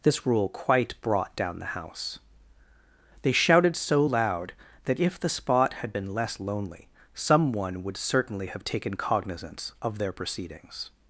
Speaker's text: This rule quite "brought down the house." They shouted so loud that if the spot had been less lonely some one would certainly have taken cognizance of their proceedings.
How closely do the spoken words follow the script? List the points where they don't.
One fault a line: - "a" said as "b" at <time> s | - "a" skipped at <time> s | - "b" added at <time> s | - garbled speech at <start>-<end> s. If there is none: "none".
none